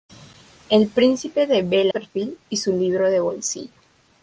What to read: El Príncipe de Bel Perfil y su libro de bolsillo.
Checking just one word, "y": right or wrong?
right